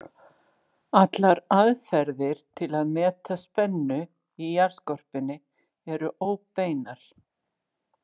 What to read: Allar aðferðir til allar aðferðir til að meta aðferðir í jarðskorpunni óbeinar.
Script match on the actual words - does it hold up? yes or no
no